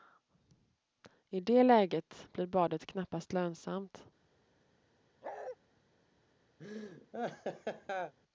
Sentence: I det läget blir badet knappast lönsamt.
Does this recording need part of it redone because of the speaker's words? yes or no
no